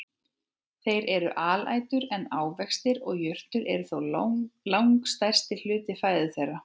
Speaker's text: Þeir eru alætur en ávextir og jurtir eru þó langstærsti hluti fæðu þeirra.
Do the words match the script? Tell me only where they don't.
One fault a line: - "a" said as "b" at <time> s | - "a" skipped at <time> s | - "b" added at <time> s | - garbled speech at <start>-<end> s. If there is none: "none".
none